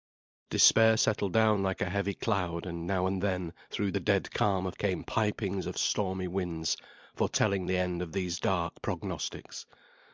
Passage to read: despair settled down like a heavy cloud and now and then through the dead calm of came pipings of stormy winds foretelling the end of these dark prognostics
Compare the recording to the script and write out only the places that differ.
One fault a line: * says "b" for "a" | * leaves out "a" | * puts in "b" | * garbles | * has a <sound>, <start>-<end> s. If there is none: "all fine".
all fine